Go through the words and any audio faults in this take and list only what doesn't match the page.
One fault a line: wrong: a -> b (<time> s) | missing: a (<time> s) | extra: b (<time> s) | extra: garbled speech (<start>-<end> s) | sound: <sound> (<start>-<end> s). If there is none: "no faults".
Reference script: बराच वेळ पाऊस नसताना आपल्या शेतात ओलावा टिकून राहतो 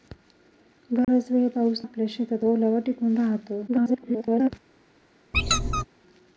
sound: dropout (1.0-1.1 s)
missing: नसताना (1.8 s)
extra: garbled speech (3.7-4.5 s)
sound: squeak (5.3-5.8 s)